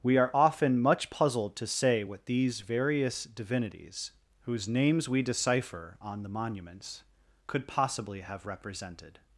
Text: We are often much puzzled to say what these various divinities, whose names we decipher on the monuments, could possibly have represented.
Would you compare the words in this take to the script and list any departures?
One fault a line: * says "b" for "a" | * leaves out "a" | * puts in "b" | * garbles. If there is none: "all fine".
all fine